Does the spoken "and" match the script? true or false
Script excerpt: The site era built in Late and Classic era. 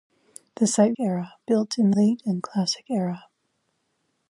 true